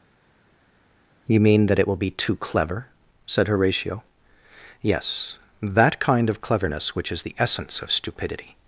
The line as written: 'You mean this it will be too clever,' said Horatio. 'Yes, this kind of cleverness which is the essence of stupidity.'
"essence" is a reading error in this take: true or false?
false